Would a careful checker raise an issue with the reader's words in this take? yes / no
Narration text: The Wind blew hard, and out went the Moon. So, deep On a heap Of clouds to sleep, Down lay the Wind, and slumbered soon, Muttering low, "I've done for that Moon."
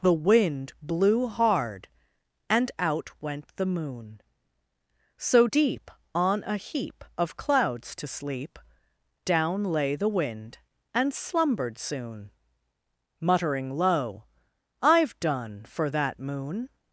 no